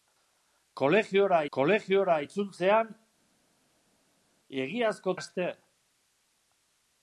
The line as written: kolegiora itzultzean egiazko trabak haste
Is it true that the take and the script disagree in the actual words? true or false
true